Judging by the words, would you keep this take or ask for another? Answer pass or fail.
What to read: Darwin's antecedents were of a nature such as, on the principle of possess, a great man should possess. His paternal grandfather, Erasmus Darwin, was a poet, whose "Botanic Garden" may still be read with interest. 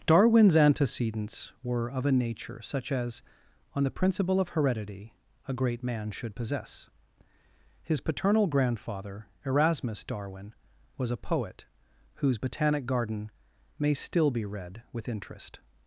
fail